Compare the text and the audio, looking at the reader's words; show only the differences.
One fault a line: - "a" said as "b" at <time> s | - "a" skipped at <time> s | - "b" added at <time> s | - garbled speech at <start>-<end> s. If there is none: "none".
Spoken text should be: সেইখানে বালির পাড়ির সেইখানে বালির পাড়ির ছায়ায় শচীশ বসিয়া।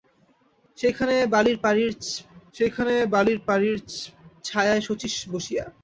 none